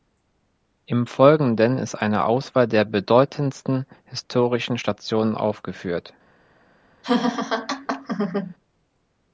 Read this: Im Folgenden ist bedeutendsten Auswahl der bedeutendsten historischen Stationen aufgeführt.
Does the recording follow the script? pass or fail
fail